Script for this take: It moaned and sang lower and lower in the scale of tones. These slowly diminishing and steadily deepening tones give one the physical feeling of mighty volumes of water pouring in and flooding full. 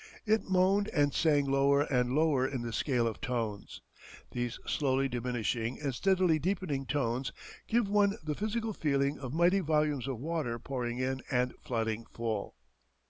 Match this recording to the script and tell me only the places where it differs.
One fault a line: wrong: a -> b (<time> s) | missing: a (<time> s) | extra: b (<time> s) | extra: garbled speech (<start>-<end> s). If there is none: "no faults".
no faults